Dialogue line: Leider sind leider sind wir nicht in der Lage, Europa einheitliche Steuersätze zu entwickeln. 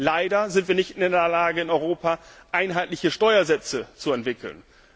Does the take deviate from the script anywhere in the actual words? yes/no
yes